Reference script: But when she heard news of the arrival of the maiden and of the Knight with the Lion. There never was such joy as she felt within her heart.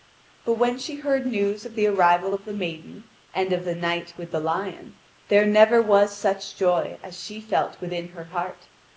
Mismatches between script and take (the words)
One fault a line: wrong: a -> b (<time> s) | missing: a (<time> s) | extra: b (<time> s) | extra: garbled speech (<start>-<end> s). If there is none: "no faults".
no faults